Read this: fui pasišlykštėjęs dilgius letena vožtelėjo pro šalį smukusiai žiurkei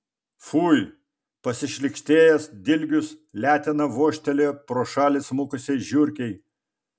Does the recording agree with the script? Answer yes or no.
yes